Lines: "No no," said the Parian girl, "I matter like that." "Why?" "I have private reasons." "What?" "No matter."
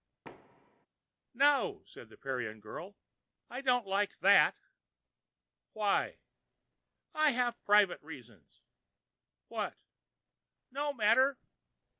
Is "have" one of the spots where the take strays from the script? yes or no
no